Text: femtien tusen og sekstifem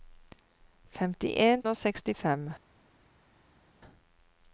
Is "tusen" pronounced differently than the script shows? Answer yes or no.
yes